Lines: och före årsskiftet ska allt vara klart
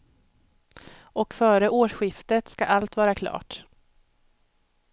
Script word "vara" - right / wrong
right